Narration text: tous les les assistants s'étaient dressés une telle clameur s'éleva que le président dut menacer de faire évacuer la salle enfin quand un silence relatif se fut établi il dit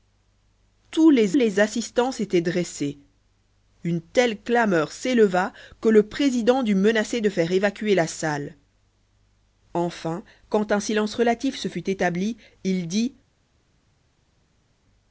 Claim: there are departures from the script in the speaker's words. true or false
false